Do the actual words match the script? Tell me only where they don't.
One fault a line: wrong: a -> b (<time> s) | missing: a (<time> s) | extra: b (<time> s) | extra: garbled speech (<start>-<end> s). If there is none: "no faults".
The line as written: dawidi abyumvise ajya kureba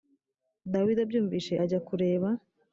no faults